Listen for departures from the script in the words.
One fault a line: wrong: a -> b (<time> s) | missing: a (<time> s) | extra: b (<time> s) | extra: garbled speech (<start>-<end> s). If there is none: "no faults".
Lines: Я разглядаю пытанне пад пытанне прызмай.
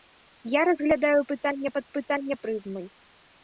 no faults